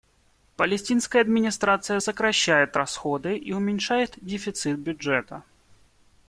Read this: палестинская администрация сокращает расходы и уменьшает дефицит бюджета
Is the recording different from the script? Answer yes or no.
no